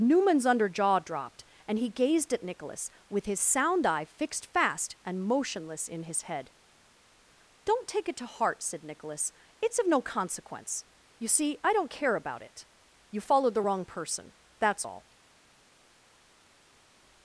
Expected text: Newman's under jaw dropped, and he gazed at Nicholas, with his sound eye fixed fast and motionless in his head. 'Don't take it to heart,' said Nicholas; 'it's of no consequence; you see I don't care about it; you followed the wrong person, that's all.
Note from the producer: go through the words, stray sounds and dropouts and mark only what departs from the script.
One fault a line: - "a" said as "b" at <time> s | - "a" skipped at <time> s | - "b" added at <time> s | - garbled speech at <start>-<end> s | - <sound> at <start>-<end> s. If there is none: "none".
none